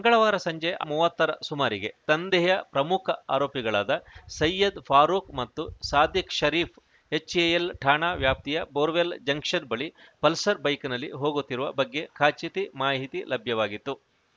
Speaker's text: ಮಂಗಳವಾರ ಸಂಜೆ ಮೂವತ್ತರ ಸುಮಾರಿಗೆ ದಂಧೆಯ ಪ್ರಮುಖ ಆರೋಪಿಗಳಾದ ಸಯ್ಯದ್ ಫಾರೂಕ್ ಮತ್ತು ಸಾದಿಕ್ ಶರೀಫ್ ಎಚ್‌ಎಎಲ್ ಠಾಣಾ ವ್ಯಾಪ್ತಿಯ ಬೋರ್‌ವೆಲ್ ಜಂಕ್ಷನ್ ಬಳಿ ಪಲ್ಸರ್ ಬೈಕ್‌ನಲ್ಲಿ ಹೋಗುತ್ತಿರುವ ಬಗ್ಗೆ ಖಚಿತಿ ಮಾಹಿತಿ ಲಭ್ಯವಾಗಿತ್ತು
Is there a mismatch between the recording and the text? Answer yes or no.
no